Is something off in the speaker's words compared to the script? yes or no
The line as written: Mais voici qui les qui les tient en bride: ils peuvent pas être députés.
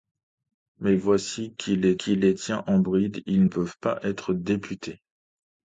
no